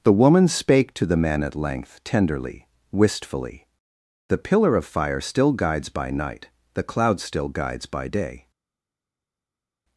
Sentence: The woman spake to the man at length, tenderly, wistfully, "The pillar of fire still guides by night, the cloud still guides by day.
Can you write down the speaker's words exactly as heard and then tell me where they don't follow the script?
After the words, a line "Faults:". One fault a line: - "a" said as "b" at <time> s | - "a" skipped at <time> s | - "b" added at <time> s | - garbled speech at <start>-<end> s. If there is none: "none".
The woman spake to the man at length, tenderly, wistfully, "The pillar of fire still guides by night, the cloud still guides by day.
Faults:
none